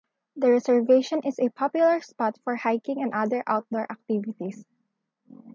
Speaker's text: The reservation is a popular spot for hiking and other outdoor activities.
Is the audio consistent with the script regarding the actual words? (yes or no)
yes